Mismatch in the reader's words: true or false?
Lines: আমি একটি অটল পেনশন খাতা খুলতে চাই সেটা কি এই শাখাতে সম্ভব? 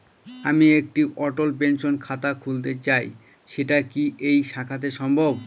false